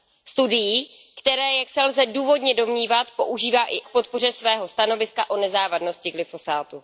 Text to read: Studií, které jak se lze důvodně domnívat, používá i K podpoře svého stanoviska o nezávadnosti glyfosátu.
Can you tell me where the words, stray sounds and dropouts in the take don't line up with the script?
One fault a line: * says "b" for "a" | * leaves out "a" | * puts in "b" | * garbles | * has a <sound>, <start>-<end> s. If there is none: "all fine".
all fine